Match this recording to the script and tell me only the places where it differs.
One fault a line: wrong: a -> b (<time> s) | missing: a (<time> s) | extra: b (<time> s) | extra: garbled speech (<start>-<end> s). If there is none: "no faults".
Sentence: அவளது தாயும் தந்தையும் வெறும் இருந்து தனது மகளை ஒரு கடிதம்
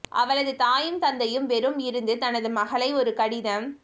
no faults